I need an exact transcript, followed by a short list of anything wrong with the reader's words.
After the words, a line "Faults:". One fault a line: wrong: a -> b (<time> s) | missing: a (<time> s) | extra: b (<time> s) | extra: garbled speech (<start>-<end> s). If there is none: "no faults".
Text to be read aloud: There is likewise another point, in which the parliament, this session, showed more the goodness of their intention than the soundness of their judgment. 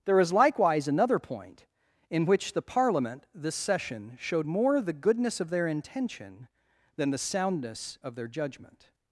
There is likewise another point, in which the parliament, this session, showed more the goodness of their intention than the soundness of their judgment.
Faults:
no faults